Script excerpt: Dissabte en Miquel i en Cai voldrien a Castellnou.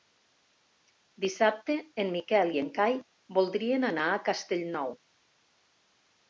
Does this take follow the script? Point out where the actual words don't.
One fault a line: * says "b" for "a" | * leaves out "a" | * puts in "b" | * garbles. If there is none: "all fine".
* puts in "anar"